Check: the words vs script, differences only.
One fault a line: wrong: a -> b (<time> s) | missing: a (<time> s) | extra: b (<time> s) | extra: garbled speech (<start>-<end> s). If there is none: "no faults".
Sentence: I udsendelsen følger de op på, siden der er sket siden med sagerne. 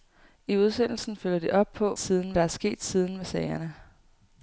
no faults